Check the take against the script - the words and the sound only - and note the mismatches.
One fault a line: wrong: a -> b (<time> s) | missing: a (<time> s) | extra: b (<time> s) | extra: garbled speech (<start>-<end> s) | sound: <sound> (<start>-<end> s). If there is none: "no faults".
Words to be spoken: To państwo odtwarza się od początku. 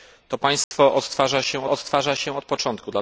sound: dropout (0.6-0.7 s)
extra: odtwarza się (1.7 s)